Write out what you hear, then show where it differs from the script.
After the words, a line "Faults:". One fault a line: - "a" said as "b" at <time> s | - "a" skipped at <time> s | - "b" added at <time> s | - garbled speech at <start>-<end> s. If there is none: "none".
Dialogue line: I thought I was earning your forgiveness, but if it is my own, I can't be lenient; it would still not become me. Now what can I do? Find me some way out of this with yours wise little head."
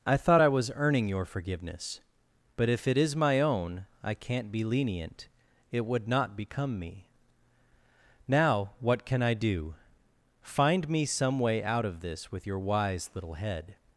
I thought I was earning your forgiveness, but if it is my own, I can't be lenient; it would not become me. Now what can I do? Find me some way out of this with your wise little head."
Faults:
- "still" skipped at 6.1 s
- "yours" said as "your" at 12.5 s